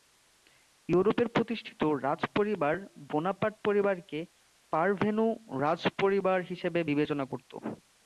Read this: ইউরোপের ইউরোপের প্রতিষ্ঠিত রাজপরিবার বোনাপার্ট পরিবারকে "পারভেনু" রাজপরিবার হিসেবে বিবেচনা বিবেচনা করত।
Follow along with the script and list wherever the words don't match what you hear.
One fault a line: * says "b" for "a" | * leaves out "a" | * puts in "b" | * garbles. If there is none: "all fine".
* leaves out "ইউরোপের"
* leaves out "বিবেচনা"